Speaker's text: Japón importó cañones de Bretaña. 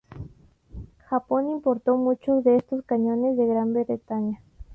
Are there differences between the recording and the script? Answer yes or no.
yes